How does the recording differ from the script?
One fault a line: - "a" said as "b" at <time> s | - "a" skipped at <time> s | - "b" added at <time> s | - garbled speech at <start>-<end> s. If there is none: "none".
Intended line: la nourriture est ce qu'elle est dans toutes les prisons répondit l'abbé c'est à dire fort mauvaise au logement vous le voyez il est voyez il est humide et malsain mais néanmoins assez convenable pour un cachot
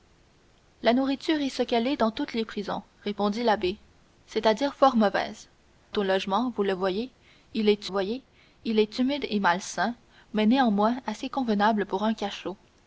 none